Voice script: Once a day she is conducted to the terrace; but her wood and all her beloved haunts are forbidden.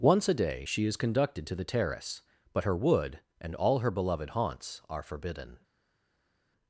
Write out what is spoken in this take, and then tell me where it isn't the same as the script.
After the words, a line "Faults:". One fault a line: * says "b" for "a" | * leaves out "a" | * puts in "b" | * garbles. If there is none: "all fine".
Once a day she is conducted to the terrace; but her wood and all her beloved haunts are forbidden.
Faults:
all fine